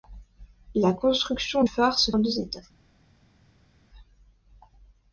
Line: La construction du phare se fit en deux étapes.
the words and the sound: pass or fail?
fail